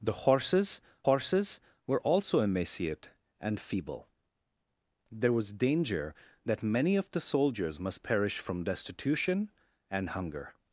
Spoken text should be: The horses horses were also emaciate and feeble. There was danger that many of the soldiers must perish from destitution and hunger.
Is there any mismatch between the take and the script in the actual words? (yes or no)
no